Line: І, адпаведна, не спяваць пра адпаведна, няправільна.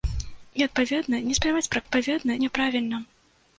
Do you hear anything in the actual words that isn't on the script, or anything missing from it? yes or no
no